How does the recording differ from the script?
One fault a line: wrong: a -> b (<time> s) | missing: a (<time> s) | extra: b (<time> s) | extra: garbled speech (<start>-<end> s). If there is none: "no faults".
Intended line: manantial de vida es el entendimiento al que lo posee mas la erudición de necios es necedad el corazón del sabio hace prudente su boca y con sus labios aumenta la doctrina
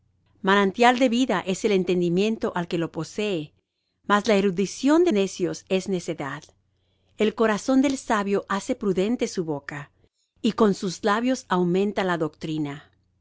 no faults